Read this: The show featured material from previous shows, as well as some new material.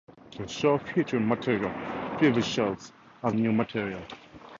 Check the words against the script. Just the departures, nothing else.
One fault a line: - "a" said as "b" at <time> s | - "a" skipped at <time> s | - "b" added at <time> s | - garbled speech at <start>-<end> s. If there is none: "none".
- "from" skipped at 1.7 s
- "well as some" skipped at 3.3 s